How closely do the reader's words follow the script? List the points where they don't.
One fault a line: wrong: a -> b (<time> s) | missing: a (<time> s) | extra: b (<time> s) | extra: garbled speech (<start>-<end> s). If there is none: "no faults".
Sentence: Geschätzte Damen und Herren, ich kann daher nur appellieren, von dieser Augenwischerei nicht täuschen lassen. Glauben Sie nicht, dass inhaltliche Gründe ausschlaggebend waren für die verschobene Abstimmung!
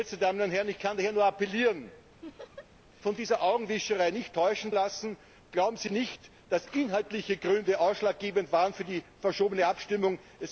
no faults